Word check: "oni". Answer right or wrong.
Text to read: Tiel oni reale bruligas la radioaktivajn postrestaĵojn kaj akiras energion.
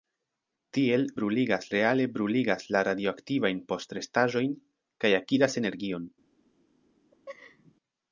wrong